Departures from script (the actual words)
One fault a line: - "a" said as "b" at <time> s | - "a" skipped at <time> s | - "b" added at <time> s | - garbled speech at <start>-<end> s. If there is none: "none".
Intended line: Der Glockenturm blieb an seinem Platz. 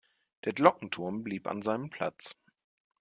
none